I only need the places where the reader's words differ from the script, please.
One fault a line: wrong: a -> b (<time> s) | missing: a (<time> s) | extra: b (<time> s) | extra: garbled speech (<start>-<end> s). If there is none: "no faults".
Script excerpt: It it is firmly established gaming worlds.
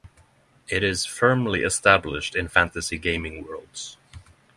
missing: it (0.8 s)
extra: in fantasy (2.4 s)